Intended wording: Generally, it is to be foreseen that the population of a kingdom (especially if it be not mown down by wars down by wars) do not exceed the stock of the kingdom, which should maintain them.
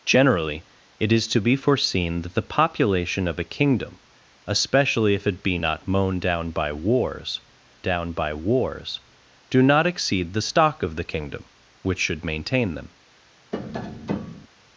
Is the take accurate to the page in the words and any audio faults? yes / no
no